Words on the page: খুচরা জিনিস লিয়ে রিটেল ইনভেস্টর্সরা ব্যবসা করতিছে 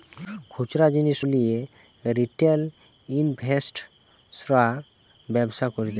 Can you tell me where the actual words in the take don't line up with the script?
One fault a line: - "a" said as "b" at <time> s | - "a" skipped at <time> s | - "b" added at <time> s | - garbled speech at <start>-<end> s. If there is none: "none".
none